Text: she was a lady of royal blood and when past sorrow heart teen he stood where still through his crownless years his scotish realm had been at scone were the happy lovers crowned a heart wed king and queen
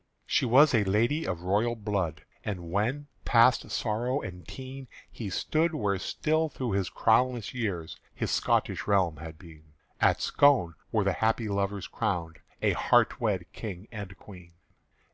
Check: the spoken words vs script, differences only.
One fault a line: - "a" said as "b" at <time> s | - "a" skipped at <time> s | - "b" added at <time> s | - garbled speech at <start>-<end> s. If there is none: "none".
- "heart" said as "and" at 4.2 s